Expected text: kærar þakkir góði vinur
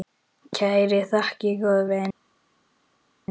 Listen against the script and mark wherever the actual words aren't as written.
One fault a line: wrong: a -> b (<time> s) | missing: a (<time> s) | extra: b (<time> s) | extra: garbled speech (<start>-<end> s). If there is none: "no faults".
no faults